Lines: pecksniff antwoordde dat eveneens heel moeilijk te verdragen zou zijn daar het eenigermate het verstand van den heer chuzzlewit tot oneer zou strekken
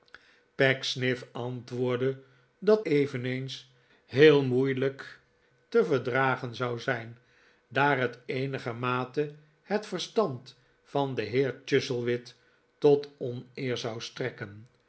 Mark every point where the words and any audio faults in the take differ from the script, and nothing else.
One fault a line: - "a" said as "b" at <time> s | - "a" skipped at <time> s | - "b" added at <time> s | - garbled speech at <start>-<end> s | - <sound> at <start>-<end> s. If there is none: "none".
none